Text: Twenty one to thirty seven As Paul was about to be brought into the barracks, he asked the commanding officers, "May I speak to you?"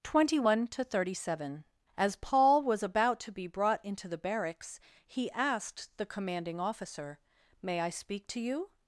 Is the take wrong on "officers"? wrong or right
wrong